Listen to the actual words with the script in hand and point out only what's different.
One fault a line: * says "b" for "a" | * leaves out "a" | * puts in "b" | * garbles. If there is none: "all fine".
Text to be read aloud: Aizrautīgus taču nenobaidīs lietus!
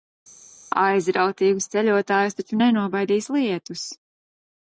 * puts in "ceļotājus"